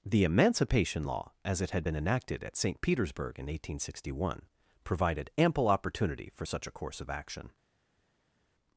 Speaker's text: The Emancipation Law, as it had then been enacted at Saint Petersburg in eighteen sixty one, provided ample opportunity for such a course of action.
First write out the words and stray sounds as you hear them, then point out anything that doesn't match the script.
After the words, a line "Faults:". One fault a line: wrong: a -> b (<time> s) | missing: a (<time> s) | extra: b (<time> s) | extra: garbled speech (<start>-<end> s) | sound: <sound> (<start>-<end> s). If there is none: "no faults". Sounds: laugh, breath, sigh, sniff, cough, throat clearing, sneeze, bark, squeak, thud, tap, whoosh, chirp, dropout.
The Emancipation Law, as it had been enacted at Saint Petersburg in eighteen sixty one, provided ample opportunity for such a course of action.
Faults:
missing: then (1.8 s)